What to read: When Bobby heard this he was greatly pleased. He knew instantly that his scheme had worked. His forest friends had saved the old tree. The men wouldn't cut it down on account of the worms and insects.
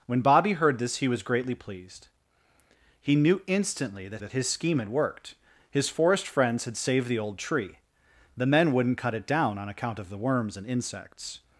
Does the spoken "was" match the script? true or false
true